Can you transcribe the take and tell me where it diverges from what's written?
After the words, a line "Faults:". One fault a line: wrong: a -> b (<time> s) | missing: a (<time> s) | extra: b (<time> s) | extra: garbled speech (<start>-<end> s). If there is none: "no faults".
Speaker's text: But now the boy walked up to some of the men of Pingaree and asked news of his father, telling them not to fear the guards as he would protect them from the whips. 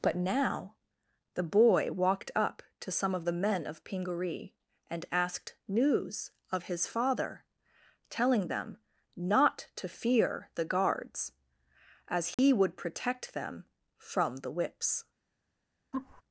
But now the boy walked up to some of the men of Pingaree and asked news of his father, telling them not to fear the guards as he would protect them from the whips.
Faults:
no faults